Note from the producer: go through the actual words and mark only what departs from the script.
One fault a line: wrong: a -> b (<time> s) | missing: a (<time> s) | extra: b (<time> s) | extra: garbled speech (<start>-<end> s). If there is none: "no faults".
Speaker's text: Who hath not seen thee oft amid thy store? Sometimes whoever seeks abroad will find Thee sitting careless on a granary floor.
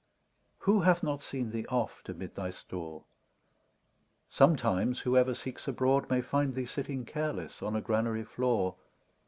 wrong: will -> may (6.1 s)